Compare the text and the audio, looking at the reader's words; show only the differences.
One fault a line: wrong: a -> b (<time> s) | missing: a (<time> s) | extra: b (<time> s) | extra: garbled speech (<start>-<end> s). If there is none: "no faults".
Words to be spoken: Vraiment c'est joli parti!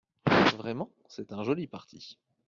extra: un (1.3 s)